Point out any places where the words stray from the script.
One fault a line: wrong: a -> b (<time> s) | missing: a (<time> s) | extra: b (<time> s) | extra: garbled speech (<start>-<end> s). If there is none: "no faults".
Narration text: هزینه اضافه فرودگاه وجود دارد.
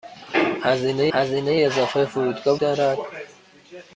extra: هزینه (1.1 s)
missing: وجود (2.6 s)